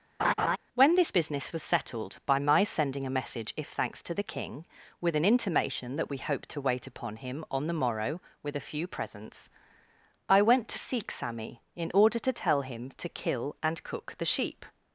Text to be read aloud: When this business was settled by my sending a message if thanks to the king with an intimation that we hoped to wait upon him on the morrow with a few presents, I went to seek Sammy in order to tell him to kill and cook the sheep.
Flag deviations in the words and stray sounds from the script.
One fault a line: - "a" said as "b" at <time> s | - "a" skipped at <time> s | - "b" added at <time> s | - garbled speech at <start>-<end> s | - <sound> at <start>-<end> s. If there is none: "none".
- laugh at 0.2-0.6 s